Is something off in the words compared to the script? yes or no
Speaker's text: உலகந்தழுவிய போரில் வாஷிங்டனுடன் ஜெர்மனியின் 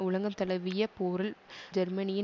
yes